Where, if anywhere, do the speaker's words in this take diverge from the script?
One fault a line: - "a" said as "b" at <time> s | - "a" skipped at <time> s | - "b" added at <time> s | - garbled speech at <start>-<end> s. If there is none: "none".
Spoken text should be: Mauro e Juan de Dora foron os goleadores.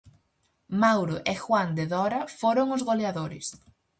none